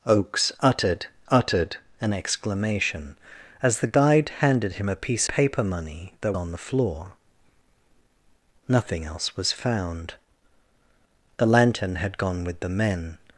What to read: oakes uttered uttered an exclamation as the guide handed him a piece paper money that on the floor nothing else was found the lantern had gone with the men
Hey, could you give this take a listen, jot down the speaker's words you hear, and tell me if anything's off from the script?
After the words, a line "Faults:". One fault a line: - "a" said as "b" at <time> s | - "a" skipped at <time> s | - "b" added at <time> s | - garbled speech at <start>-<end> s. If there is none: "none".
oakes uttered uttered an exclamation as the guide handed him a piece paper money that on the floor nothing else was found the lantern had gone with the men
Faults:
none